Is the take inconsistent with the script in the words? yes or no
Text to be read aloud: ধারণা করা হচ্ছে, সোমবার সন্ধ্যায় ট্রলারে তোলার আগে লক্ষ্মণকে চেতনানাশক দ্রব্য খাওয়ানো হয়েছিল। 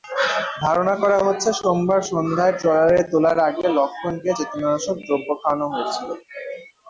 no